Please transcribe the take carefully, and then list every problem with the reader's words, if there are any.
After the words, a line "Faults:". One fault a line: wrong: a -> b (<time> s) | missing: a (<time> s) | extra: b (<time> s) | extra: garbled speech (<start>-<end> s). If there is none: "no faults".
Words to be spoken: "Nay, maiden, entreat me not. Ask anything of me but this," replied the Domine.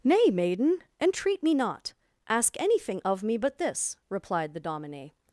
"Nay, maiden, entreat me not. Ask anything of me but this," replied the Domine.
Faults:
no faults